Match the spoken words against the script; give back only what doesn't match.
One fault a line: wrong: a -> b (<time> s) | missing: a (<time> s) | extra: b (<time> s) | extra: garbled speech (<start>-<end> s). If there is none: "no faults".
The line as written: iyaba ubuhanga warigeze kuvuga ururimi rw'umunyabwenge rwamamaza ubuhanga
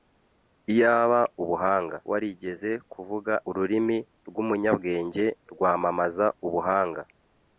no faults